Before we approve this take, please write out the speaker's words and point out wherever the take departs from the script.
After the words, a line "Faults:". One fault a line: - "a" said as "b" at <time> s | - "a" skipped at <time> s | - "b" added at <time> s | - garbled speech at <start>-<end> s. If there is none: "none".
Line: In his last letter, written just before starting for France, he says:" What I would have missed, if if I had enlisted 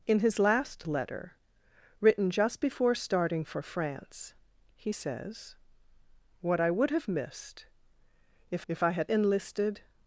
In his last letter, written just before starting for France, he says:" What I would have missed, if if I had enlisted
Faults:
none